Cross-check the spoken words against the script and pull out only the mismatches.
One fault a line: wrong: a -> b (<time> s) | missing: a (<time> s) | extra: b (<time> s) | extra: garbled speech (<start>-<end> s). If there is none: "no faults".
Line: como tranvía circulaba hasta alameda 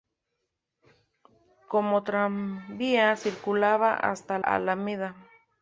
no faults